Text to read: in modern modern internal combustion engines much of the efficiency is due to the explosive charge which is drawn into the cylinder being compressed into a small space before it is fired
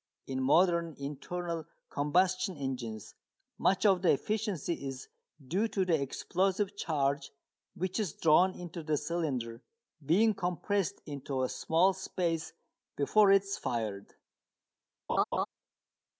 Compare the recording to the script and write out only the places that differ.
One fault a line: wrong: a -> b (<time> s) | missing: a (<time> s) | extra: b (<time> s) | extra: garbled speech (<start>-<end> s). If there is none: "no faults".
missing: modern (0.9 s)